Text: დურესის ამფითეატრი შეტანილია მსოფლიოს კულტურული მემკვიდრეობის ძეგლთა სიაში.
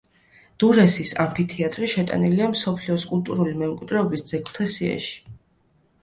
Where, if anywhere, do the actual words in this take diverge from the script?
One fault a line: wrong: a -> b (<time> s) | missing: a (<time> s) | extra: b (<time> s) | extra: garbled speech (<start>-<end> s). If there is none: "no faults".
no faults